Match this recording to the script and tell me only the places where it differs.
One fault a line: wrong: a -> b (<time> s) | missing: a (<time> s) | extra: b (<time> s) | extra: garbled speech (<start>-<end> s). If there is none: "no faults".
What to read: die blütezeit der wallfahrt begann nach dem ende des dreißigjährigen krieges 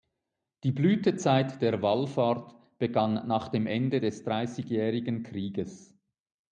no faults